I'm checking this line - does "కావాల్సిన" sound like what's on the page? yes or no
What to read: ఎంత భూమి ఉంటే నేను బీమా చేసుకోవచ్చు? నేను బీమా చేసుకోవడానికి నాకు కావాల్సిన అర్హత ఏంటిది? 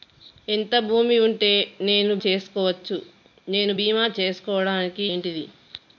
no